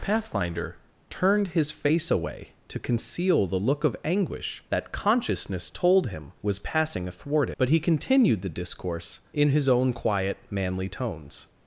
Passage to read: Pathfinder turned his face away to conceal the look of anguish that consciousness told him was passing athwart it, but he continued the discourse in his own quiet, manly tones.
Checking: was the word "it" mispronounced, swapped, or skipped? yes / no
yes